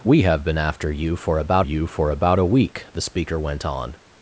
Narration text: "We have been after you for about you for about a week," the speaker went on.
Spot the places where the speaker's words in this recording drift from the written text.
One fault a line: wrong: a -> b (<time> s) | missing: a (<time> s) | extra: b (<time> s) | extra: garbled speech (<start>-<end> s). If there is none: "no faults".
no faults